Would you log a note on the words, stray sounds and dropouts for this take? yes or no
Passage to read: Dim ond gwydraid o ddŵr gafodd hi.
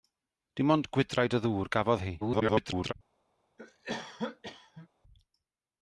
yes